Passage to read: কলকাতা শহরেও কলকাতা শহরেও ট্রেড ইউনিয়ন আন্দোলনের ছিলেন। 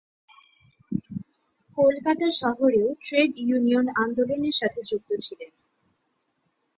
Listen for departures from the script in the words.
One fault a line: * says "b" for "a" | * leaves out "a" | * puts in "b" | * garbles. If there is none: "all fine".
* leaves out "কলকাতা শহরেও"
* puts in "সাথে যুক্ত"